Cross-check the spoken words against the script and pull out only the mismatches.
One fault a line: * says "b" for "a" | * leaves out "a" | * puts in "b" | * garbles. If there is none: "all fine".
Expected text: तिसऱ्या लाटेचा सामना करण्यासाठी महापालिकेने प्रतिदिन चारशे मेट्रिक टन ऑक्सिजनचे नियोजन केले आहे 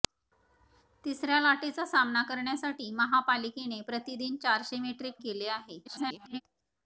* leaves out "टन ऑक्सिजनचे नियोजन"
* garbles